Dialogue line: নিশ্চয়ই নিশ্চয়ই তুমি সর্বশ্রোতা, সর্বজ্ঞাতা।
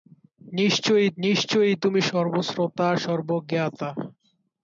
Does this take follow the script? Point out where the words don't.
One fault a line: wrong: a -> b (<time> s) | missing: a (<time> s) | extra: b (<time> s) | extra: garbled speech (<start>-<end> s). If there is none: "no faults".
no faults